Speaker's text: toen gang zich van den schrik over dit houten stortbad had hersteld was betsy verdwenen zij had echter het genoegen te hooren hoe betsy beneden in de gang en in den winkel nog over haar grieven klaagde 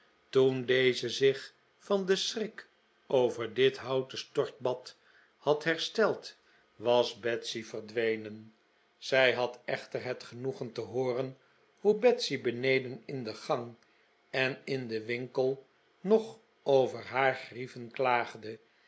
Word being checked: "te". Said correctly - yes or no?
yes